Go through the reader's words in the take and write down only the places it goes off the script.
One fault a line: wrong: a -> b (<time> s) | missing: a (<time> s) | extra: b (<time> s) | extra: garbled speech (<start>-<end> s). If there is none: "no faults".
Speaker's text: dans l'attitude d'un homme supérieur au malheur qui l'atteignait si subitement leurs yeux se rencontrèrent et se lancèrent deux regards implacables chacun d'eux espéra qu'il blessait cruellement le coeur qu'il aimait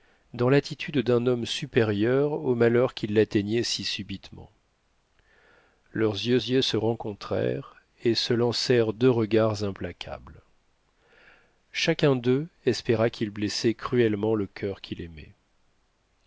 extra: yeux (6.4 s)